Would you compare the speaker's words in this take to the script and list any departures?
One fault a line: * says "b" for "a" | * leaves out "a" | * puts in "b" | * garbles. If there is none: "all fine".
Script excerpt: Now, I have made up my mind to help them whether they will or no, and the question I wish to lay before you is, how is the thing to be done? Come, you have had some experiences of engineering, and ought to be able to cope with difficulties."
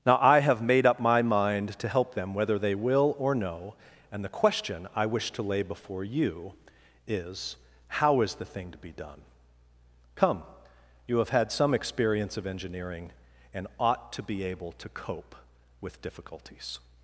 * says "experience" for "experiences"